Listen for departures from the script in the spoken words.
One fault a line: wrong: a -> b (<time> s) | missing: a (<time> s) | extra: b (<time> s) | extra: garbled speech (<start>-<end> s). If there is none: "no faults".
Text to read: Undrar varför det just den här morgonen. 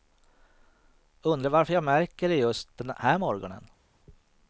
extra: jag märker (1.7 s)